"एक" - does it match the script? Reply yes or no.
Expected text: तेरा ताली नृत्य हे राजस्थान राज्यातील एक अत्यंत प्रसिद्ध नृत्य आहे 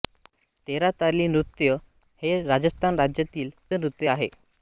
no